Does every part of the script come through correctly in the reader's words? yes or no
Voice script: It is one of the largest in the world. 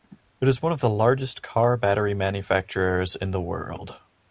no